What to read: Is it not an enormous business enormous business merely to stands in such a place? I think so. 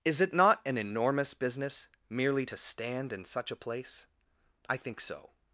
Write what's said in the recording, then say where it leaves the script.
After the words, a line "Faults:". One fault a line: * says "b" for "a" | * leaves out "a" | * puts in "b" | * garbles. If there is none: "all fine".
Is it not an enormous business merely to stand in such a place? I think so.
Faults:
* leaves out "enormous business"
* says "stand" for "stands"